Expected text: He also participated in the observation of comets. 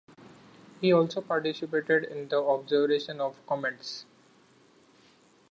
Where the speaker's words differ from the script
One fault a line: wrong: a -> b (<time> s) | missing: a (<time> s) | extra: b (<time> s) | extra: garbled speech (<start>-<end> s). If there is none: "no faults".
no faults